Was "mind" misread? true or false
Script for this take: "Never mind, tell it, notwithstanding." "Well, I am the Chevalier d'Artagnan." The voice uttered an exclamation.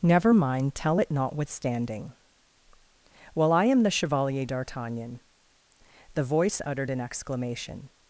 false